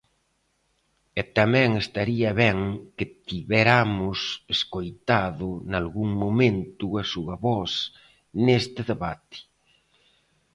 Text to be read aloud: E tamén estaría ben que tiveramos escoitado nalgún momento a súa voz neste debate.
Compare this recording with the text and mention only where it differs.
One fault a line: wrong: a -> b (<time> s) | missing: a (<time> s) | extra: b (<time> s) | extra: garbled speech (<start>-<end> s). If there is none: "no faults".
no faults